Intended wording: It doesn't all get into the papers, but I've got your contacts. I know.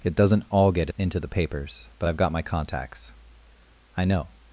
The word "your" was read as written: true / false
false